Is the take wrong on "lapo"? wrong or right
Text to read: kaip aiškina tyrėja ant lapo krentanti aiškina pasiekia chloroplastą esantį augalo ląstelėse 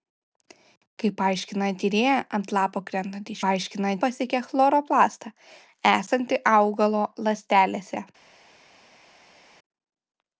right